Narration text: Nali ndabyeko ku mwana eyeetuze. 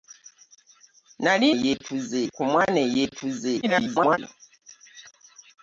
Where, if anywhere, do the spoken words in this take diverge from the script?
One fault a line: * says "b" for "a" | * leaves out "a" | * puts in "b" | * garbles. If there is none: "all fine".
* says "eyeetuze" for "ndabyeko"
* garbles